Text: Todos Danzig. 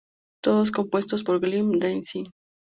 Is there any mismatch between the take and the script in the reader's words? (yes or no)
yes